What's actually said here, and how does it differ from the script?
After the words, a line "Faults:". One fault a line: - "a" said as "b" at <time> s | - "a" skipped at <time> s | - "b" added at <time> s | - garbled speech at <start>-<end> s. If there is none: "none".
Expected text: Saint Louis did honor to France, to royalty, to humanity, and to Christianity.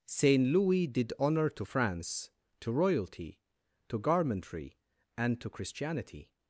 Saint Louis did honor to France, to royalty, to garmentry, and to Christianity.
Faults:
- "humanity" said as "garmentry" at 4.0 s